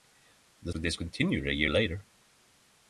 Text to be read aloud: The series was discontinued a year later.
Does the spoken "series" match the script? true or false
false